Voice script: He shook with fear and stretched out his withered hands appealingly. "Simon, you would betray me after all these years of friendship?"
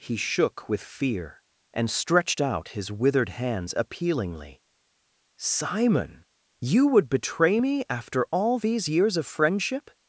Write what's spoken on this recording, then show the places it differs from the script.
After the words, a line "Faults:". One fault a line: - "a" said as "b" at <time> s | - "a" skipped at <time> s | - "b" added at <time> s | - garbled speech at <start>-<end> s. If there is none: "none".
He shook with fear and stretched out his withered hands appealingly. "Simon, you would betray me after all these years of friendship?"
Faults:
none